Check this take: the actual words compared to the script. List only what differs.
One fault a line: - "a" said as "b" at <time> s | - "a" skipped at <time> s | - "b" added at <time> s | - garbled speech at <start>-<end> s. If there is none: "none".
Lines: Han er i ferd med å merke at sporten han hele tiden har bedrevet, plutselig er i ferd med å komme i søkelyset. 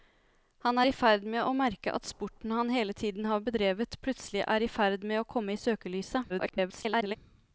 - garbled speech at 6.3-7.2 s